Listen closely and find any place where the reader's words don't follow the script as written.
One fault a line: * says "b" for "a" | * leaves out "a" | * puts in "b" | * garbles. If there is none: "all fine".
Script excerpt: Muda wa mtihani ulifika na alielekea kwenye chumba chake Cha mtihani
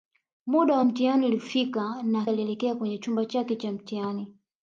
all fine